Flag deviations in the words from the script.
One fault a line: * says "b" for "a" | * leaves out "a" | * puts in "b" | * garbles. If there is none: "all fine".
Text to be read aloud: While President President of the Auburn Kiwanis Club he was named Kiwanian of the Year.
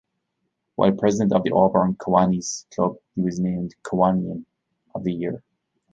* leaves out "President"